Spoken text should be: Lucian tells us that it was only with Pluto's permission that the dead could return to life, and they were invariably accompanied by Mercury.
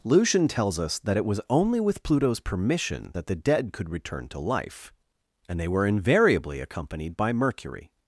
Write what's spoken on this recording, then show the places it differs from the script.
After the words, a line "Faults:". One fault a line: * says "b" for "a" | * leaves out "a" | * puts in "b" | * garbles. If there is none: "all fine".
Lucian tells us that it was only with Pluto's permission that the dead could return to life, and they were invariably accompanied by Mercury.
Faults:
all fine